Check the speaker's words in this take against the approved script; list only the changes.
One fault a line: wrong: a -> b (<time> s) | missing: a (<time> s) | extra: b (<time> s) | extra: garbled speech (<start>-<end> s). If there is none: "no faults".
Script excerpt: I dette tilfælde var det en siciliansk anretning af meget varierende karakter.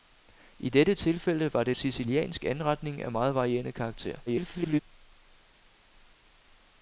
missing: en (1.7 s)
extra: garbled speech (4.3-4.8 s)